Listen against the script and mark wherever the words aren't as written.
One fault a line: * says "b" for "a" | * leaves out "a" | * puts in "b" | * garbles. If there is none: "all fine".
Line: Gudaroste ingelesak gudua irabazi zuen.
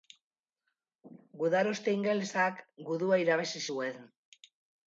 all fine